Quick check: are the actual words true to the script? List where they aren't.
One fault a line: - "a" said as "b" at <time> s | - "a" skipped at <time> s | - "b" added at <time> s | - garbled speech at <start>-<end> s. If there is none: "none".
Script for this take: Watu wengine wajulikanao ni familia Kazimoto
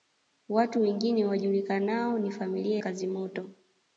none